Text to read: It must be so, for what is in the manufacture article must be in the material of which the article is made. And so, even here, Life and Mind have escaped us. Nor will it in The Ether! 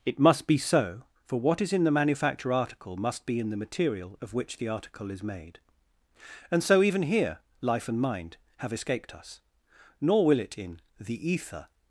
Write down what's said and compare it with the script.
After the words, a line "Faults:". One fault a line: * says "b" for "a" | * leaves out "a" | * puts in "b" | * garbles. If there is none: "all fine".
It must be so, for what is in the manufacture article must be in the material of which the article is made. And so, even here, Life and Mind have escaped us. Nor will it in The Ether!
Faults:
all fine